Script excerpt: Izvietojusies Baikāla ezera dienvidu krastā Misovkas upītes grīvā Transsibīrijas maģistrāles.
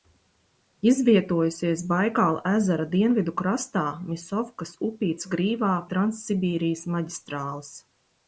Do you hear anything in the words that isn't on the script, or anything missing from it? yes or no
no